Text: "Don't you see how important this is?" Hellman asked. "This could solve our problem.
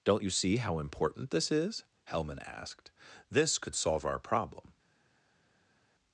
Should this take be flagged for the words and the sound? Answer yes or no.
no